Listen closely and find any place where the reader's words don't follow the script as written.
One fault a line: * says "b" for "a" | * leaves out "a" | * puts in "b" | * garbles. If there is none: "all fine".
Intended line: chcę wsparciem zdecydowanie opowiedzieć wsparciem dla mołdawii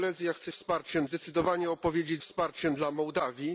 all fine